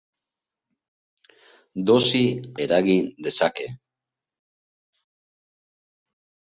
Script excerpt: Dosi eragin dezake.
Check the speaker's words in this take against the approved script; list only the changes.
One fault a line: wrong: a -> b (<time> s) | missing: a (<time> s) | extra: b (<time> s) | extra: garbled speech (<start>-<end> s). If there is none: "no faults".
no faults